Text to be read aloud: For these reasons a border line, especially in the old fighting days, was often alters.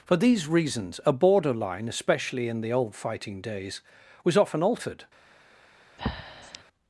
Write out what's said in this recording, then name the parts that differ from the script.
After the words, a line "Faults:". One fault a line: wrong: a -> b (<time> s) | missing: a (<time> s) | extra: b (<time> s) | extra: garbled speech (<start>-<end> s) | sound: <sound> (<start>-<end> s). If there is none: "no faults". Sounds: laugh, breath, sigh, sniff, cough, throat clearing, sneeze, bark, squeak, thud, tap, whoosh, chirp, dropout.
For these reasons a border line, especially in the old fighting days, was often altered.
Faults:
wrong: alters -> altered (4.6 s)
sound: breath (6.0-6.6 s)